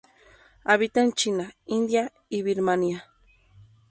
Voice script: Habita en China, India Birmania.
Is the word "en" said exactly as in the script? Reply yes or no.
yes